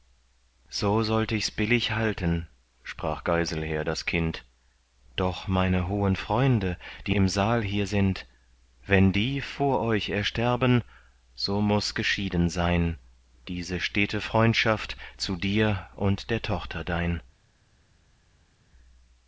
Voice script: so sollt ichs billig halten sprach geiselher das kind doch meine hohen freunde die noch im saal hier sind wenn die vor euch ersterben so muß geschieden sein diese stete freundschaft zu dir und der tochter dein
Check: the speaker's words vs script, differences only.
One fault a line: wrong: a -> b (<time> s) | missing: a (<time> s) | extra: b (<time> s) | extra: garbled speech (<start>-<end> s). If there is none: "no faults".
missing: noch (7.2 s)